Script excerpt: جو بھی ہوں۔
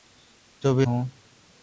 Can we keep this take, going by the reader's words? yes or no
yes